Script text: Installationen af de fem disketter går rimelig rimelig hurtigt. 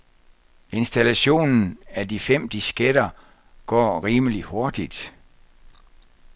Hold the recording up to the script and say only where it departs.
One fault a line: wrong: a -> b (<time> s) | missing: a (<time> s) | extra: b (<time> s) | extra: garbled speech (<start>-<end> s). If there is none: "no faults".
missing: rimelig (4.4 s)